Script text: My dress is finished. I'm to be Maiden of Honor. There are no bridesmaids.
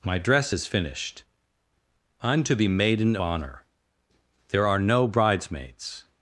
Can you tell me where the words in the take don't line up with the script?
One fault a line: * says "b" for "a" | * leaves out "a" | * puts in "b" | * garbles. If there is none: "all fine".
* leaves out "of"